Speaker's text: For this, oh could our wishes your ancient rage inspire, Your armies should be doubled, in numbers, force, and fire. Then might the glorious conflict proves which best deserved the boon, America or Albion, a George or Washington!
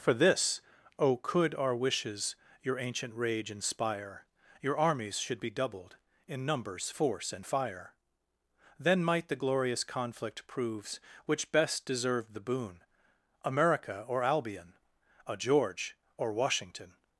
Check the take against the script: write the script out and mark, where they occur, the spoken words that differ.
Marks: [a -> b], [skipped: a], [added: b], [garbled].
For this, oh could our wishes your ancient rage inspire, Your armies should be doubled, in numbers, force, and fire. Then might the glorious conflict proves which best deserved the boon, America or Albion, a George or Washington!